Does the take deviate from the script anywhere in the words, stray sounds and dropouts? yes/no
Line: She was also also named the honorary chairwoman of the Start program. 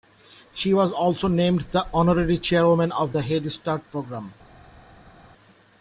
yes